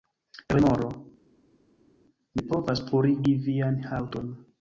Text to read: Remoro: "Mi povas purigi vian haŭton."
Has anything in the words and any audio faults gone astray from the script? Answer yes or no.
no